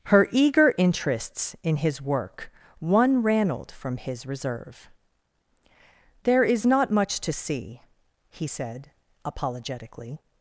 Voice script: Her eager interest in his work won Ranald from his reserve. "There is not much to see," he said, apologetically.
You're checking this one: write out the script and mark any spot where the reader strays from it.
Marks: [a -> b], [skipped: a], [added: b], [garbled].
Her eager [interest -> interests] in his work won Ranald from his reserve. "There is not much to see," he said, apologetically.